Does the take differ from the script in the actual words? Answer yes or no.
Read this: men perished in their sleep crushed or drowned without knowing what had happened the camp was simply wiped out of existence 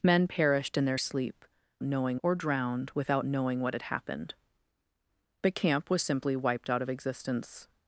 yes